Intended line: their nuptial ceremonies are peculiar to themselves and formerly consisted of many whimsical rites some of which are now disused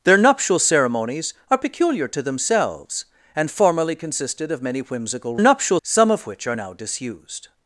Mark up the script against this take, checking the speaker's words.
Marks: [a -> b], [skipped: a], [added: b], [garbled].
their nuptial ceremonies are peculiar to themselves and formerly consisted of many whimsical [rites -> nuptial] some of which are now disused